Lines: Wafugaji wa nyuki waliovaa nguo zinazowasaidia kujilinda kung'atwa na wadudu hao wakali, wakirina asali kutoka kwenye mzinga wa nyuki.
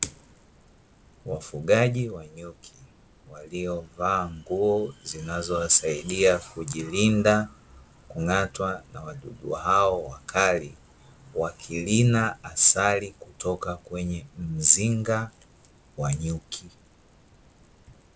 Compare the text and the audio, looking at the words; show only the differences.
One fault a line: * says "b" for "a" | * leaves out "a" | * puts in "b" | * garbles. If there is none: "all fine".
all fine